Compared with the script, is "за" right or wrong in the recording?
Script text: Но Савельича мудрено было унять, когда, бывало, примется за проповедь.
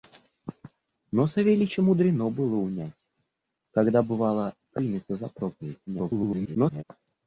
right